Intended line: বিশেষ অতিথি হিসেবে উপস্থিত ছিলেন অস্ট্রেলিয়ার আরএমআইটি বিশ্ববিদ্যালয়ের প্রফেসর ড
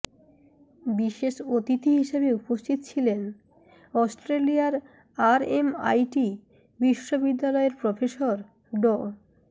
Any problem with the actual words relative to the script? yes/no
no